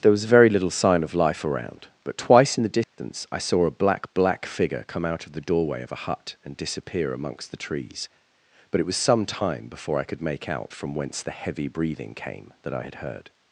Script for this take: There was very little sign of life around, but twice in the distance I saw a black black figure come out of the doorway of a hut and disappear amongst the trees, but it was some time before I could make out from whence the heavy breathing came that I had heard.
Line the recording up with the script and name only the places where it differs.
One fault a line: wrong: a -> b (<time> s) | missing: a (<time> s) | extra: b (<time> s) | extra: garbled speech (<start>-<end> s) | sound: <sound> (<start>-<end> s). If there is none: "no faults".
sound: dropout (2.8-3.0 s)